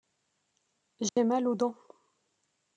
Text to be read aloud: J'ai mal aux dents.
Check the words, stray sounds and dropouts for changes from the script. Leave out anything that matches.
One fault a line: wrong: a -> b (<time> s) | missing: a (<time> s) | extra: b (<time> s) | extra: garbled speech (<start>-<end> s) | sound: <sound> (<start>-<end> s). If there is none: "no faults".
sound: dropout (1.1-1.2 s)